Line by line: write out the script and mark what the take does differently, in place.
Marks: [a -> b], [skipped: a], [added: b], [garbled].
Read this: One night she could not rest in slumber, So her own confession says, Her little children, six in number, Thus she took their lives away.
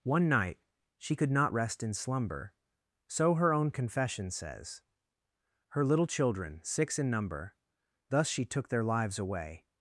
One night she could not rest in slumber, So her own confession says, Her little children, six in number, Thus she took their lives away.